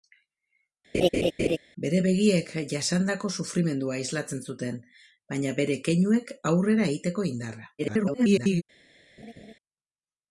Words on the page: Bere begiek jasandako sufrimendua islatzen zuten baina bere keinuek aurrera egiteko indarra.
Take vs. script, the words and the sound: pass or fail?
fail